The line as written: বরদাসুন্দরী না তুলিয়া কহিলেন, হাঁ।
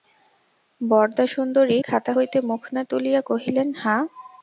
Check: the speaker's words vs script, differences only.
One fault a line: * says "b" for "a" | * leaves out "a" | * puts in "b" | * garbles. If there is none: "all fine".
* puts in "খাতা হইতে মুখ"